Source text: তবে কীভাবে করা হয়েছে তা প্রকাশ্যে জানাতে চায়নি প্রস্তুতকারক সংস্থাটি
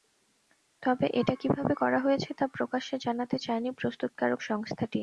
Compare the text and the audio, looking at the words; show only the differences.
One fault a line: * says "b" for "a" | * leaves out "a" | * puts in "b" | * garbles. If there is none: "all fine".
* puts in "এটা"